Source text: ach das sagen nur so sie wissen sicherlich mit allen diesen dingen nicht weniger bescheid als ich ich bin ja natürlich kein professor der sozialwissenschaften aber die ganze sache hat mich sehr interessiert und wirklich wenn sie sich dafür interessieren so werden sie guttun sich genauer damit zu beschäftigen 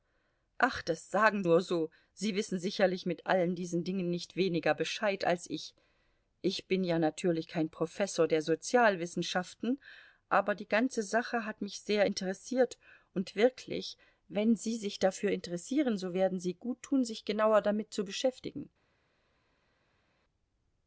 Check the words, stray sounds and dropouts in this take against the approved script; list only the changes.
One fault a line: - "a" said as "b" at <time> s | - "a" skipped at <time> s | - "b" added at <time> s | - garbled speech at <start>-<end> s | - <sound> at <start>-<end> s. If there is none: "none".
none